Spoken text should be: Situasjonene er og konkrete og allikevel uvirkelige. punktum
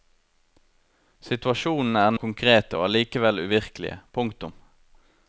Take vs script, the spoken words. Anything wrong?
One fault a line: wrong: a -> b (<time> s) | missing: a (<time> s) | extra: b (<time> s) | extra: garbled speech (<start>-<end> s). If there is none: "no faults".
no faults